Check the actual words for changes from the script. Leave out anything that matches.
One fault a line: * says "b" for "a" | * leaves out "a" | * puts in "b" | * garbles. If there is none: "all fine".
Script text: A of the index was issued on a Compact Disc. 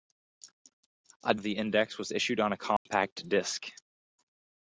all fine